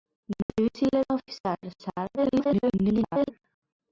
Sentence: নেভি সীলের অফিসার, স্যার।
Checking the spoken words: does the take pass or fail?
fail